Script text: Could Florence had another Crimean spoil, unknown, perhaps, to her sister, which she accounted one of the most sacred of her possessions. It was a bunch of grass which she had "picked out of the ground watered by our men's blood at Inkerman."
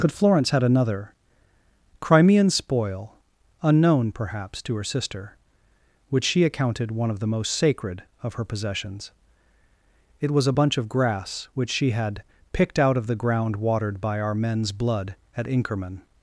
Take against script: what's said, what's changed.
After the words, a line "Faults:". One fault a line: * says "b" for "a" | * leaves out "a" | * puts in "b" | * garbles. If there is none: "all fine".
Could Florence had another Crimean spoil, unknown, perhaps, to her sister, which she accounted one of the most sacred of her possessions. It was a bunch of grass which she had "picked out of the ground watered by our men's blood at Inkerman."
Faults:
all fine